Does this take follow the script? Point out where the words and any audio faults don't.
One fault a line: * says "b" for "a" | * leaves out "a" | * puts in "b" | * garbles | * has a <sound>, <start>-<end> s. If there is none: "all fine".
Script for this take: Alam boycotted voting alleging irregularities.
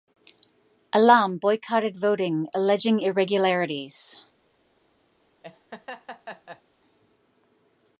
* has a laugh, 5.4-6.6 s